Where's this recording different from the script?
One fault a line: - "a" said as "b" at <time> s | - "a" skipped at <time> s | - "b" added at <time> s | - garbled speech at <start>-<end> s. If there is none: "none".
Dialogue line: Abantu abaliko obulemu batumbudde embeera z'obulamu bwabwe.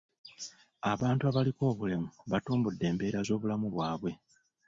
none